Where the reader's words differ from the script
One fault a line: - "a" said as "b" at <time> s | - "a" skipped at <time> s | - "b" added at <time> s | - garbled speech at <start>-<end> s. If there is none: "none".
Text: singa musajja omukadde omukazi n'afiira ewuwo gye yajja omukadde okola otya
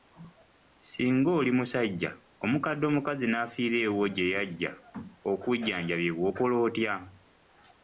- "oli" added at 1.4 s
- "omukadde" said as "okujjanjabibwa" at 5.3 s